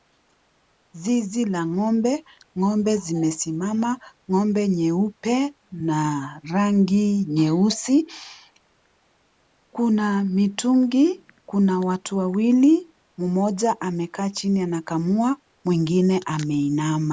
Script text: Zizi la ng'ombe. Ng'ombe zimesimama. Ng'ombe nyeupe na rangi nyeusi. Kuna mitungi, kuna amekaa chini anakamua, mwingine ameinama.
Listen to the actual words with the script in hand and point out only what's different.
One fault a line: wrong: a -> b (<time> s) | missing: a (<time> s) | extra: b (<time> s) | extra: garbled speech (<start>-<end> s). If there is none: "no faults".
extra: watu wawili mmoja (11.8 s)